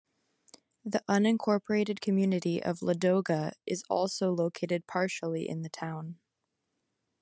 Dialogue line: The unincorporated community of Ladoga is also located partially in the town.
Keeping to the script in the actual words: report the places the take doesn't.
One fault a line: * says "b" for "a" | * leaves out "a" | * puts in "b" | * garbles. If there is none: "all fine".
all fine